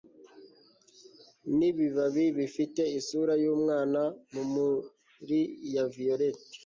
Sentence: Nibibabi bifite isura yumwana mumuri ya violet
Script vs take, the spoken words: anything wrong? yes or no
no